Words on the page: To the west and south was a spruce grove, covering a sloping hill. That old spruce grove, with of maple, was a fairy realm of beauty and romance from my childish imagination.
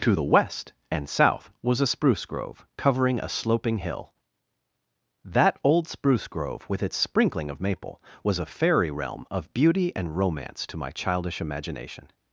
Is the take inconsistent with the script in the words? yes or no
yes